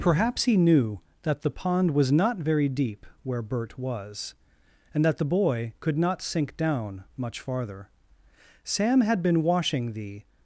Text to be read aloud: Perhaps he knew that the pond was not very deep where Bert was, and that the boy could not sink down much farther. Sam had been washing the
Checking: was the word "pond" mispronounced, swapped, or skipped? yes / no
no